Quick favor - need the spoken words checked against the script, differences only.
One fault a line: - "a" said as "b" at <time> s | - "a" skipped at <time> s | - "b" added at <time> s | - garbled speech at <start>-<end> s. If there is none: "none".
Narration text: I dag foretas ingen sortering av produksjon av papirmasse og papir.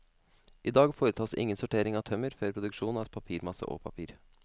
- "tømmer før" added at 2.1 s